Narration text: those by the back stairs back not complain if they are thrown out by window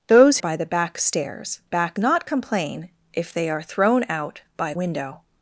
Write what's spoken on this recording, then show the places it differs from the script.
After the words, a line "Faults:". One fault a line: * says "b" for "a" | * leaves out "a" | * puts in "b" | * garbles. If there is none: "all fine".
those by the back stairs back not complain if they are thrown out by window
Faults:
all fine